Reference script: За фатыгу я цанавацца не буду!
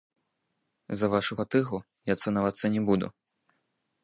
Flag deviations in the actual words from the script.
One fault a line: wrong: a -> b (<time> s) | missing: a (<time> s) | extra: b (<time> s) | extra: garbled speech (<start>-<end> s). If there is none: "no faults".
extra: вашу (1.1 s)